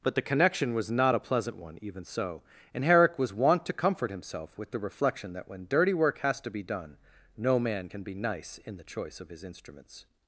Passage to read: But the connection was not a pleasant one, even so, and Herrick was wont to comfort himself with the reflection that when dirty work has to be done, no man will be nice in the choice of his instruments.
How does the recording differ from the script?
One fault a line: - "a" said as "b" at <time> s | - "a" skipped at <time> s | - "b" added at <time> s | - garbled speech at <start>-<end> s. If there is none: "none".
- "will" said as "can" at 7.9 s